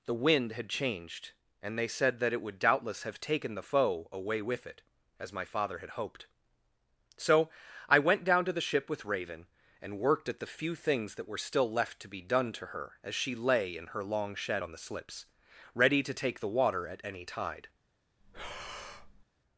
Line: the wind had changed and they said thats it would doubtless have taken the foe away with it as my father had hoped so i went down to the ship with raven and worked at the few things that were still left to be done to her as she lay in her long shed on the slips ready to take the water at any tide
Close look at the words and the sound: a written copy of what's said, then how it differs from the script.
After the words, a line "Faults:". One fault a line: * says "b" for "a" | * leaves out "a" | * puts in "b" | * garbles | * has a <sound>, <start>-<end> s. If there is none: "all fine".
the wind had changed and they said that it would doubtless have taken the foe away with it as my father had hoped so i went down to the ship with raven and worked at the few things that were still left to be done to her as she lay in her long shed on the slips ready to take the water at any tide
Faults:
* says "that" for "thats"
* has a breath, 18.2-19.3 s